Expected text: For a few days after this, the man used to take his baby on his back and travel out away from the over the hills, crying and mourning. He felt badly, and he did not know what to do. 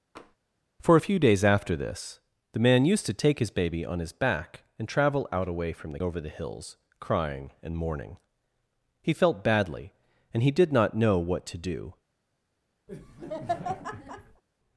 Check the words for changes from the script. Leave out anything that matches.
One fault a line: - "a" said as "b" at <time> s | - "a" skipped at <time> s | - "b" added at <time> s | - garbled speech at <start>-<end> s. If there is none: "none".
none